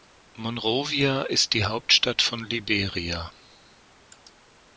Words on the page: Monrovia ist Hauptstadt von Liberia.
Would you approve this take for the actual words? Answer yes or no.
no